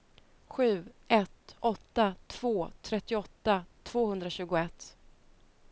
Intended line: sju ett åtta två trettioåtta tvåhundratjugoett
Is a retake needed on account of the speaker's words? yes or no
no